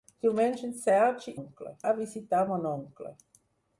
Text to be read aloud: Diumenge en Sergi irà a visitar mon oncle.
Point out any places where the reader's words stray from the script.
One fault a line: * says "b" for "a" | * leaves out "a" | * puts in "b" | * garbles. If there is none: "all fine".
* says "oncle" for "irà"